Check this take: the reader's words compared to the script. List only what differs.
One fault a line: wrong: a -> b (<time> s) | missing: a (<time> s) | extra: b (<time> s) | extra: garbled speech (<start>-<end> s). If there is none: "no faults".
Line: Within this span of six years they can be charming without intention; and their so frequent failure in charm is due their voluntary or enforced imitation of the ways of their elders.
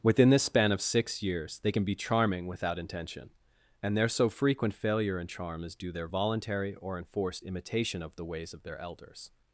no faults